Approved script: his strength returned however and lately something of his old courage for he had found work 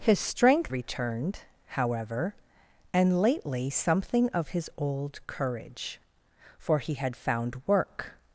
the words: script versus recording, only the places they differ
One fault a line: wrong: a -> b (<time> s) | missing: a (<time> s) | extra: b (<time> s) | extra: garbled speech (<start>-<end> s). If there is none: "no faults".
no faults